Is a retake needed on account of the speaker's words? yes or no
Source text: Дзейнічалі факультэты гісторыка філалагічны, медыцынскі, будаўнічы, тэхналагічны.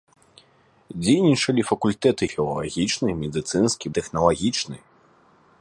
yes